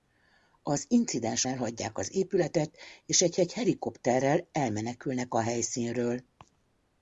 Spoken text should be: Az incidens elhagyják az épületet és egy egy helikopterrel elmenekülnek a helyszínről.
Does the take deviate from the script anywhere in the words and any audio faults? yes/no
no